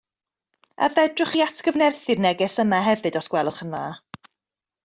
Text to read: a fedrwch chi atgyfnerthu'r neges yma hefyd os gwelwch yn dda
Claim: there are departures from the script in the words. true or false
false